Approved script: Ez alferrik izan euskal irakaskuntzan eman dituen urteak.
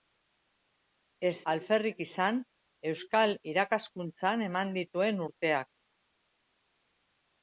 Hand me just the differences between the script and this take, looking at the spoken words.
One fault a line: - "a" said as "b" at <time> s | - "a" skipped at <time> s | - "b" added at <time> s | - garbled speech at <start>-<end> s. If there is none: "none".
none